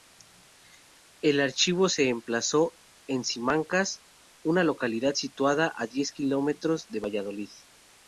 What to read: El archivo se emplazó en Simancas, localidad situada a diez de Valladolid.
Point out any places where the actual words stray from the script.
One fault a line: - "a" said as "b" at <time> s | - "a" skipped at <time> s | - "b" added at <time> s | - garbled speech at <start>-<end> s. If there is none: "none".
- "una" added at 4.4 s
- "kilómetros" added at 6.1 s